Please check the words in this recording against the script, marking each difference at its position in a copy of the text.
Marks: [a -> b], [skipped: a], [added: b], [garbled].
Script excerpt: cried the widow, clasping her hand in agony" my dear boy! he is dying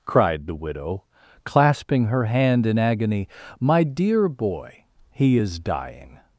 cried the widow, clasping her hand in agony" my dear boy! he is dying